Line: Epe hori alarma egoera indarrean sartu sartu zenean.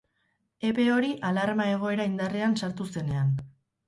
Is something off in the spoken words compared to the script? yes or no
yes